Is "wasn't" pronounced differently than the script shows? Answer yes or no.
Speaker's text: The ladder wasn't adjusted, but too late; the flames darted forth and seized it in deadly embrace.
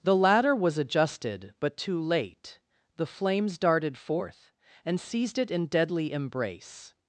yes